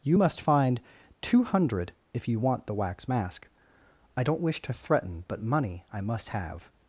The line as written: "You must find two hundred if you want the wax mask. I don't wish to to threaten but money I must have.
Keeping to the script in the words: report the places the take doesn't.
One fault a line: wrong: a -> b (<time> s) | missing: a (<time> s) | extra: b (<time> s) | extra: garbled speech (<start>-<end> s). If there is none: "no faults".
missing: to (4.7 s)